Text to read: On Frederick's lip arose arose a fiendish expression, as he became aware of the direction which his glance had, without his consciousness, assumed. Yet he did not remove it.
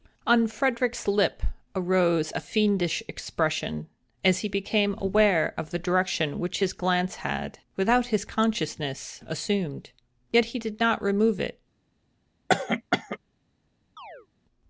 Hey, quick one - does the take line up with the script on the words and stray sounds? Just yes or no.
no